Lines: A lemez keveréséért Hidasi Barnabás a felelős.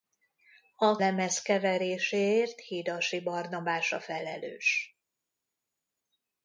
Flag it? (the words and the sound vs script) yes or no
no